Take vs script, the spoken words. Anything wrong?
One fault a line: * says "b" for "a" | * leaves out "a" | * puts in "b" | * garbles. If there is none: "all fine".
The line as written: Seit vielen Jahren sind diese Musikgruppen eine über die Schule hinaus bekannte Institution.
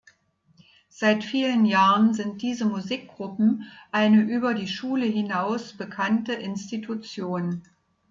all fine